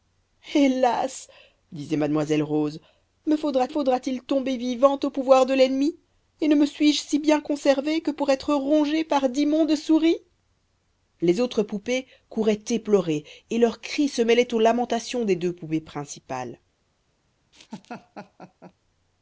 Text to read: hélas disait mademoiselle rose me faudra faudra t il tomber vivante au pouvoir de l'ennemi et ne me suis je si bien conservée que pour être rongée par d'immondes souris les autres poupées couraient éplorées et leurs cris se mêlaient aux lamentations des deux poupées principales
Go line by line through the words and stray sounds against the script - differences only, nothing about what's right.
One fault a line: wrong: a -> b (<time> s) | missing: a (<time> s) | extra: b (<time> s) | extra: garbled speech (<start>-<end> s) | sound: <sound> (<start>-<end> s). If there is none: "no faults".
sound: laugh (17.5-18.7 s)